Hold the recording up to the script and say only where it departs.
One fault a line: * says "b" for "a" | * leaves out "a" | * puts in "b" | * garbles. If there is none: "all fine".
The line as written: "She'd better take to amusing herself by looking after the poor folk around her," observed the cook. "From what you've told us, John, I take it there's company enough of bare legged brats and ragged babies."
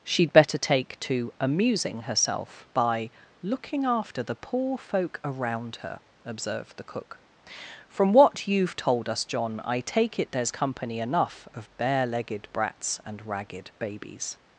all fine